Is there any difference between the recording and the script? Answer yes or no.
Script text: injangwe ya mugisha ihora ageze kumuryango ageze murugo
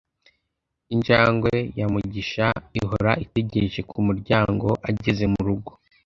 yes